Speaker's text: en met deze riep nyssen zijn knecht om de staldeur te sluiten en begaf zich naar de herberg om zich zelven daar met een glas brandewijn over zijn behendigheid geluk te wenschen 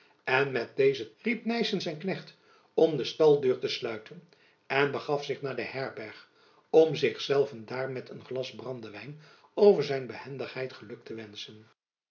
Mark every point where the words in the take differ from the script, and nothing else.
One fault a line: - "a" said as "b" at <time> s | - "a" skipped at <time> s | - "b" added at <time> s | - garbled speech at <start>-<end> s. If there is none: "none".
none